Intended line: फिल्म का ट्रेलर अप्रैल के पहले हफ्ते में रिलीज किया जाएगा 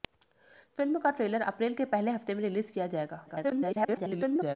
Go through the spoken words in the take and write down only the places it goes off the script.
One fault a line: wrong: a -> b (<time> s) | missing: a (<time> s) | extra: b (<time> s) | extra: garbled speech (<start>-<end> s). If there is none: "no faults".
extra: garbled speech (3.3-4.6 s)